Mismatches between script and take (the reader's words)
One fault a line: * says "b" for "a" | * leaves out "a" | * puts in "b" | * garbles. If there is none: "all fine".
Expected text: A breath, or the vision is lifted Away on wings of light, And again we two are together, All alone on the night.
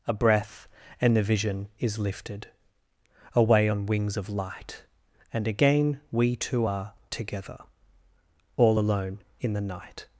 * says "and" for "or"
* says "in" for "on"